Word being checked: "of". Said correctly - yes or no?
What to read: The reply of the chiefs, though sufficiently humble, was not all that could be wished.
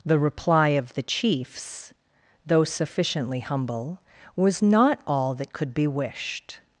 yes